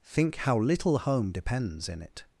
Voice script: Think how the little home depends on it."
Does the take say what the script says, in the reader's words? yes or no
no